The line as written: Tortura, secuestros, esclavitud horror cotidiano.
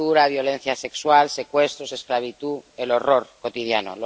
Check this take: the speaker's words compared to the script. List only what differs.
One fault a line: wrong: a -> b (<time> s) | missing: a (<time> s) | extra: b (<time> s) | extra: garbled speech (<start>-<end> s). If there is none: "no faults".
extra: violencia sexual (0.3 s)
extra: el (2.8 s)